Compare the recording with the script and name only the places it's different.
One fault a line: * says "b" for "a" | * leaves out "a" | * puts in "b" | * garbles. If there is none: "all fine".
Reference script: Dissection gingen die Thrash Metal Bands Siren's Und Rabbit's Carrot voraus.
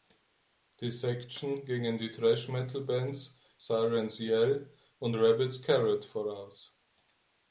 * puts in "Yell"